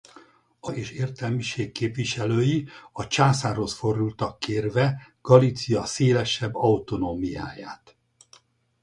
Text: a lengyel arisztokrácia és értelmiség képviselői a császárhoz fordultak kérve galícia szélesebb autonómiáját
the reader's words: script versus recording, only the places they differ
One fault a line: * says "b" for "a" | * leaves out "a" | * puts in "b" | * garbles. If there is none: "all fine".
* leaves out "lengyel arisztokrácia"